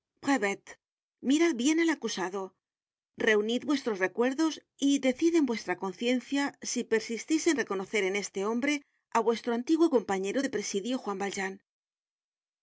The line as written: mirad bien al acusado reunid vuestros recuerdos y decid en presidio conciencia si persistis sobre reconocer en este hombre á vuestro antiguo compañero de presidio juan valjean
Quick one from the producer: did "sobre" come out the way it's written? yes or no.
no